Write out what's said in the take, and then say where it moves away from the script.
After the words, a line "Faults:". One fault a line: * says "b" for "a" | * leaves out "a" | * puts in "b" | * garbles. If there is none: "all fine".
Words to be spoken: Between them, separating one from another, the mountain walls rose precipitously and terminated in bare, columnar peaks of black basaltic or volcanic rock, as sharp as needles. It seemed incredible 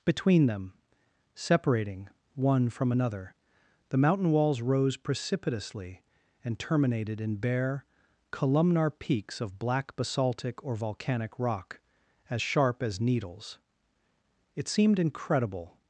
Between them, separating one from another, the mountain walls rose precipitously and terminated in bare, columnar peaks of black basaltic or volcanic rock, as sharp as needles. It seemed incredible
Faults:
all fine